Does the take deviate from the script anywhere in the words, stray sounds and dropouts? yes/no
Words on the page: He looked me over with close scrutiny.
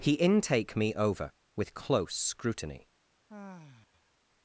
yes